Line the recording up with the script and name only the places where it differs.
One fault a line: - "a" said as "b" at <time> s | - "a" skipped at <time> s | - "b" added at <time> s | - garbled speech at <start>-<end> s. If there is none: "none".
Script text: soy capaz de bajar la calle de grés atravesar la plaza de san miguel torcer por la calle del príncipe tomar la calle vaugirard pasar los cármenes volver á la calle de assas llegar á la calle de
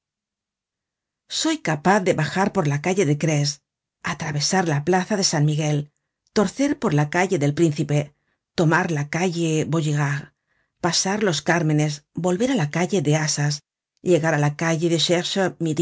- "por" added at 2.5 s